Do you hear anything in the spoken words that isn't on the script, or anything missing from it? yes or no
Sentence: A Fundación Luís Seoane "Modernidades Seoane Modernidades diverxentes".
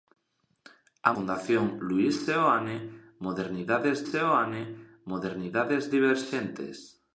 no